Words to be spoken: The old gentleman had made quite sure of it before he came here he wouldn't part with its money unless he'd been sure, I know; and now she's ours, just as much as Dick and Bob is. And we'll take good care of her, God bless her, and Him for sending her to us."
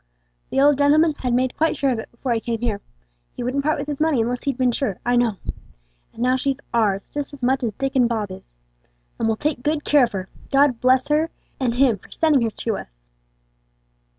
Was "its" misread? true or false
true